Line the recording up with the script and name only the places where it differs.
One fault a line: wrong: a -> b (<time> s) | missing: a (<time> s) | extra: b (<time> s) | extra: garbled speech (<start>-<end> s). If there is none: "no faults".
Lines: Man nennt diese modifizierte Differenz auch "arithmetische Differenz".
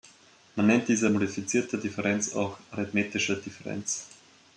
no faults